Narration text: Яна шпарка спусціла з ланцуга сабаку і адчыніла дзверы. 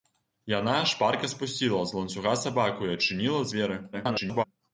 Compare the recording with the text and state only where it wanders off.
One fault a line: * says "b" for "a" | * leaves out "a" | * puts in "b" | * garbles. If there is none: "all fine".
* garbles